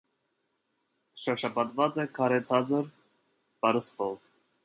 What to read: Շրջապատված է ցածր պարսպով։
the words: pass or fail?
fail